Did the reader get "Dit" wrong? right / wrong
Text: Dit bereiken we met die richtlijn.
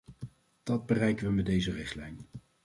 wrong